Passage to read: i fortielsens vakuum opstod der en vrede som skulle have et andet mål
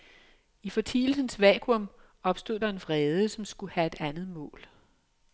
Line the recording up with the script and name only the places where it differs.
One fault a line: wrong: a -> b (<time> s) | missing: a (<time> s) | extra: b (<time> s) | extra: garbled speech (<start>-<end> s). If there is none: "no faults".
no faults